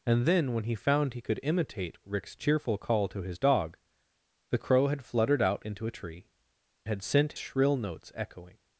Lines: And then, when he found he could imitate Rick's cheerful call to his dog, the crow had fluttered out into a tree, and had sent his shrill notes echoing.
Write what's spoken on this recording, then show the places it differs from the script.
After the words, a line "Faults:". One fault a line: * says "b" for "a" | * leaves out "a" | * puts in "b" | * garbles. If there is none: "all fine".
And then, when he found he could imitate Rick's cheerful call to his dog, the crow had fluttered out into a tree, had sent shrill notes echoing.
Faults:
* leaves out "and"
* leaves out "his"